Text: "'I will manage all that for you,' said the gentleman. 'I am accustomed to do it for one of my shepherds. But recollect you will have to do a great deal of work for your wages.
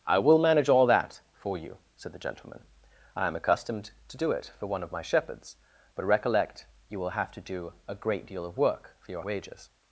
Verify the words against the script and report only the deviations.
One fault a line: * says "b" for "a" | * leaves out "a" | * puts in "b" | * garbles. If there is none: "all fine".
all fine